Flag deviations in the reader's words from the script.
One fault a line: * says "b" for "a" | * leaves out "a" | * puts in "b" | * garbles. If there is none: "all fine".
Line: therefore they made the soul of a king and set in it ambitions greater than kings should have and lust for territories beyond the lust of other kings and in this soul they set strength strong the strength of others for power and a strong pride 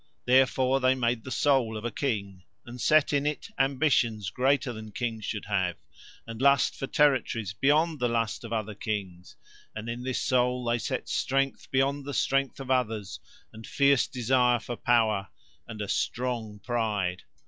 * says "beyond" for "strong"
* puts in "and fierce desire"